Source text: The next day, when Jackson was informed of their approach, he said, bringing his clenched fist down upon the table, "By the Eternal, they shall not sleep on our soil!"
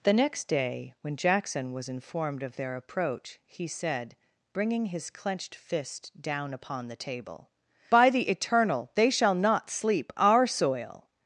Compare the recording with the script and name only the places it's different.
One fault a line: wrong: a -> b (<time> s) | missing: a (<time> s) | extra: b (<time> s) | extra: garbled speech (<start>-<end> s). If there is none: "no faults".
missing: on (10.1 s)